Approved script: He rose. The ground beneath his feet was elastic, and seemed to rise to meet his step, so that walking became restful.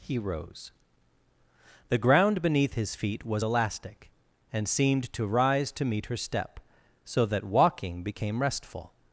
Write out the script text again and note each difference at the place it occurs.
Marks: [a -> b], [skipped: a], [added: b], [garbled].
He rose. The ground beneath his feet was elastic, and seemed to rise to meet [his -> her] step, so that walking became restful.